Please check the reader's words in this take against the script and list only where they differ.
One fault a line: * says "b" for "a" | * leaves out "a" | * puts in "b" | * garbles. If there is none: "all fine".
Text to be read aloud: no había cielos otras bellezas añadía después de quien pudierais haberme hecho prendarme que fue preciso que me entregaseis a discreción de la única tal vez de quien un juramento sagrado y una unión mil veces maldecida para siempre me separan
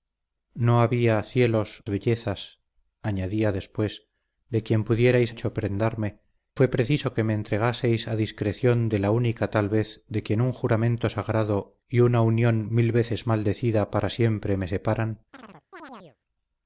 * leaves out "otras"
* leaves out "haberme"
* leaves out "que"